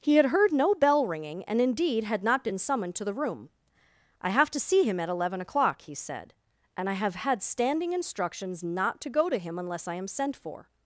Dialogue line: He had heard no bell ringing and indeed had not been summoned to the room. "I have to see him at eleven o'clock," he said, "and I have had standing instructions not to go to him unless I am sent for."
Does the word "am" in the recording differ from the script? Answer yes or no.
no